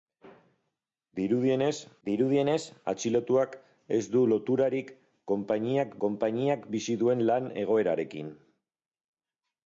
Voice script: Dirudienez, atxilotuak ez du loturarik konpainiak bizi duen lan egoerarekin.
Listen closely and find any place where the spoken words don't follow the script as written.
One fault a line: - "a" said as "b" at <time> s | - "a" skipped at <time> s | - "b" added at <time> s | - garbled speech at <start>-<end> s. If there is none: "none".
- "dirudienez" added at 2.1 s
- "konpainiak" added at 6.1 s